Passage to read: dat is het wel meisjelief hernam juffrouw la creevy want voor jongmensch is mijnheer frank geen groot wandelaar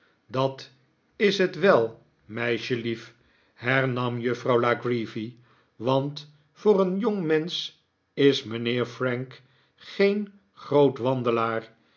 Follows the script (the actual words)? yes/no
no